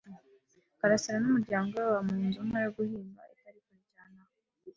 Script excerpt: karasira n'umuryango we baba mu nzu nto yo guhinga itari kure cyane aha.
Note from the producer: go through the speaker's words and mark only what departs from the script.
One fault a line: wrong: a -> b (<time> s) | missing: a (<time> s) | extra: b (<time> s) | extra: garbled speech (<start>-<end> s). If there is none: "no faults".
no faults